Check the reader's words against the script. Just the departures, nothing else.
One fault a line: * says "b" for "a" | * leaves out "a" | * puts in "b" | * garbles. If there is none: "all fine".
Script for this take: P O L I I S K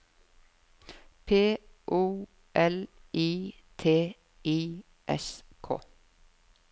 * puts in "T"